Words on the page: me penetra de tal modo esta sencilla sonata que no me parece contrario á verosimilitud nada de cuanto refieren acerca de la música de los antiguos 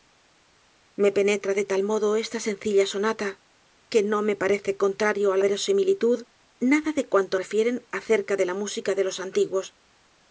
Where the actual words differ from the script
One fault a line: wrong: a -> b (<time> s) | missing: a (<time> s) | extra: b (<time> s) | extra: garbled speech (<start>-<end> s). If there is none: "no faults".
no faults